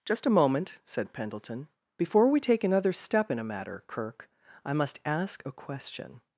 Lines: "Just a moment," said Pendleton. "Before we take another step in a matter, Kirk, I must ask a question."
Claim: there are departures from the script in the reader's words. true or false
false